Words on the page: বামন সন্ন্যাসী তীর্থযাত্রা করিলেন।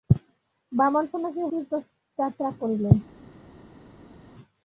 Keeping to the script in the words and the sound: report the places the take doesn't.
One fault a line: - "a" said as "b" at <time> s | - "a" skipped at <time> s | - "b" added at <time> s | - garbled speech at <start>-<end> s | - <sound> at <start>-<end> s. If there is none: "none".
none